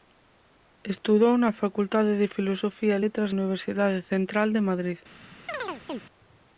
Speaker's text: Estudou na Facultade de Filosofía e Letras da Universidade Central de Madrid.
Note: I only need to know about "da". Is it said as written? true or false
false